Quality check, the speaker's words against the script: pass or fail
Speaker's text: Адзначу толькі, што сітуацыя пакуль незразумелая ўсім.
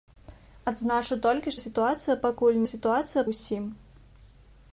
fail